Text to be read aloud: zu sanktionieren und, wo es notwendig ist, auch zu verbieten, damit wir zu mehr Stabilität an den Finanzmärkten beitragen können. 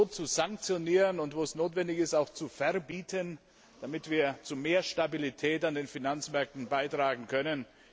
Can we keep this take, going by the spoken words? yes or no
yes